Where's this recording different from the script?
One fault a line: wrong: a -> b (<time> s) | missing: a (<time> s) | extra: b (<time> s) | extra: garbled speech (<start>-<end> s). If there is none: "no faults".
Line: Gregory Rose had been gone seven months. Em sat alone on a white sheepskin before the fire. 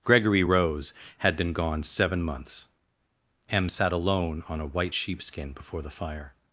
no faults